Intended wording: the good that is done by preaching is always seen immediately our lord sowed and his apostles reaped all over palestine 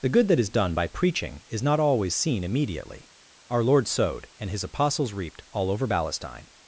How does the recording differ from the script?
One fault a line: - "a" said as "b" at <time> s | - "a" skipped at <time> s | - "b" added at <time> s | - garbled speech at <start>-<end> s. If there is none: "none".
- "not" added at 1.6 s